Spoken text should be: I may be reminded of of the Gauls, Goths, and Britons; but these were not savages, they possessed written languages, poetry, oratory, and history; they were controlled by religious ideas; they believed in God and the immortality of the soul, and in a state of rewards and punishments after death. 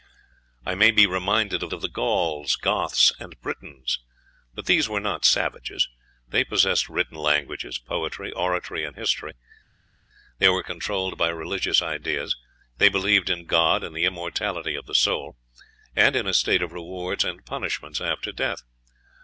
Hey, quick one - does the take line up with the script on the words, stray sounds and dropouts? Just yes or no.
yes